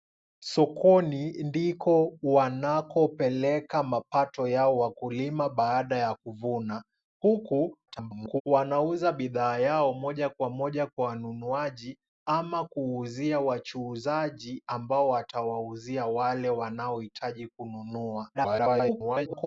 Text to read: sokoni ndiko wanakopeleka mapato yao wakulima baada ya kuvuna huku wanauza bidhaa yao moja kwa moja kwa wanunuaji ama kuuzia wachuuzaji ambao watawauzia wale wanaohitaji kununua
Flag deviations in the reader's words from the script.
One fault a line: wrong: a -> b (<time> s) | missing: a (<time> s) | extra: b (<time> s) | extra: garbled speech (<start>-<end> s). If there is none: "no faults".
extra: garbled speech (7.9-8.4 s)
extra: garbled speech (18.3-19.5 s)